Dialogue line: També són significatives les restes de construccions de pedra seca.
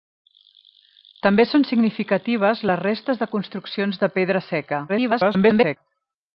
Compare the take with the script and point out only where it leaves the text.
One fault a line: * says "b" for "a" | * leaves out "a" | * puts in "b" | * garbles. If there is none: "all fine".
* garbles